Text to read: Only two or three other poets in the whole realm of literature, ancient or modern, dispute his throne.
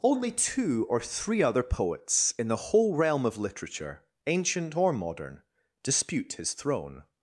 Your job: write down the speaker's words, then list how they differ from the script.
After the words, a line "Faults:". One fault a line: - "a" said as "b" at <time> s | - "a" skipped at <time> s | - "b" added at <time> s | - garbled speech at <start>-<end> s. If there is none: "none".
Only two or three other poets in the whole realm of literature, ancient or modern, dispute his throne.
Faults:
none